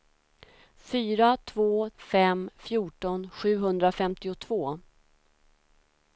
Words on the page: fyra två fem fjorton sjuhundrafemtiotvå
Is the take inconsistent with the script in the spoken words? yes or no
no